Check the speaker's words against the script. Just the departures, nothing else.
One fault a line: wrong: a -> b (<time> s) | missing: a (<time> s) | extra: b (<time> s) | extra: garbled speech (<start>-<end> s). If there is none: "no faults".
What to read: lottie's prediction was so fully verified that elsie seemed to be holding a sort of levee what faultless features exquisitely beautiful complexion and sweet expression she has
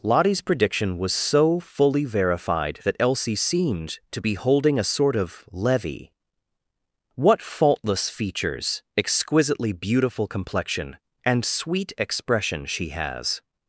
no faults